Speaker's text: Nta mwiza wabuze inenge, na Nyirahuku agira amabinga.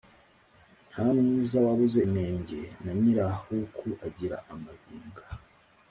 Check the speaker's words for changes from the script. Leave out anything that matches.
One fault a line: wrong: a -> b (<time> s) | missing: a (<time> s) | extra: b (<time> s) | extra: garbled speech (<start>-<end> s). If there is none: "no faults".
no faults